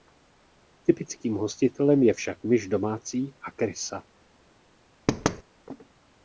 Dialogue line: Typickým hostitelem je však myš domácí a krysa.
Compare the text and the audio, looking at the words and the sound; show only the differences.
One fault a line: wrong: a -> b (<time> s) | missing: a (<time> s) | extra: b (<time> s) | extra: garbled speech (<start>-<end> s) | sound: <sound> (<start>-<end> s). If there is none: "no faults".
sound: thud (5.1-5.4 s)